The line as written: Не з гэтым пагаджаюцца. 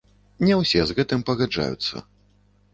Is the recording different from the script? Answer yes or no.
yes